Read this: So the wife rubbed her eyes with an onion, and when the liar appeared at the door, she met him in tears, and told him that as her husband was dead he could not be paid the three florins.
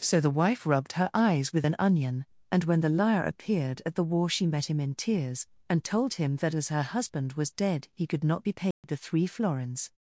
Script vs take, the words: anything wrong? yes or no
yes